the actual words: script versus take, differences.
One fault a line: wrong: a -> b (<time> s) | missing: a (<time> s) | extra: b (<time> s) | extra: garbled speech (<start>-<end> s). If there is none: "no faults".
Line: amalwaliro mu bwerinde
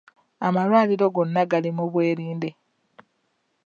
extra: gonna gali (1.1 s)